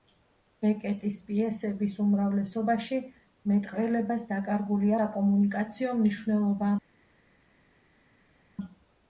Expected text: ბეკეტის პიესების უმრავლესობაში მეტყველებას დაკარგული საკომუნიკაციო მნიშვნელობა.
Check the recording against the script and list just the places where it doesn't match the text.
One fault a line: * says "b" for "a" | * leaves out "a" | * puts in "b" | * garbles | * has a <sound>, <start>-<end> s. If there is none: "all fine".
all fine